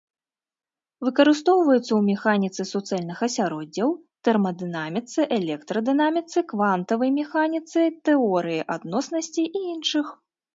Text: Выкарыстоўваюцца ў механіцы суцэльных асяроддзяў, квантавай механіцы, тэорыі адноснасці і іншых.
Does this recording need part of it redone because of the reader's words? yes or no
yes